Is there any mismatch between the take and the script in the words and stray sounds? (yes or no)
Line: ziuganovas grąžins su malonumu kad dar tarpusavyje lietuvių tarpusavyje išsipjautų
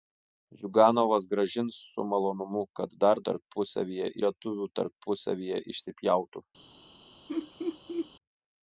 yes